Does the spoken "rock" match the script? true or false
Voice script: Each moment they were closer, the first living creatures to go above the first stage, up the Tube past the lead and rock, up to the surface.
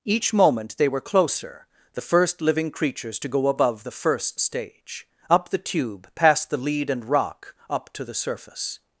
true